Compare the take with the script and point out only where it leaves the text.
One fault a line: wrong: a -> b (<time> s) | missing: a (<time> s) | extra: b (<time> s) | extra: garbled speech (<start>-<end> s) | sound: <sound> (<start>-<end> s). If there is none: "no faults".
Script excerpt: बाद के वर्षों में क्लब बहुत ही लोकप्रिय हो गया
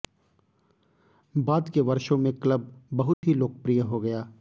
sound: dropout (3.1-3.2 s)